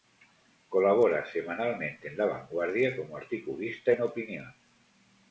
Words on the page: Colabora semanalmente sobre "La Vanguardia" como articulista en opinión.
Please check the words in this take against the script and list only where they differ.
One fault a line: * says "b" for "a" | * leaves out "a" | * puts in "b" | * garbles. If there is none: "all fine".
* says "en" for "sobre"